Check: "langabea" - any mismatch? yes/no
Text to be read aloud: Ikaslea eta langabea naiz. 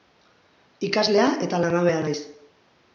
no